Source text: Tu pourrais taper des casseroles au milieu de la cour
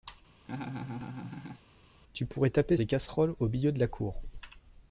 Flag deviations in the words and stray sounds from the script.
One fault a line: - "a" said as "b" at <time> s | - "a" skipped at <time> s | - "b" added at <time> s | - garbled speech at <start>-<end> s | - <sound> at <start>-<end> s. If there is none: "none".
- laugh at 0.4-1.6 s